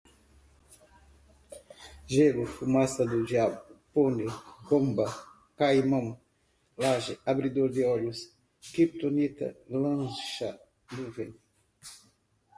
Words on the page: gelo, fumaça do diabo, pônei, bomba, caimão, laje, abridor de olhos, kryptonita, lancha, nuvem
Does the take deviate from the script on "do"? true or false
false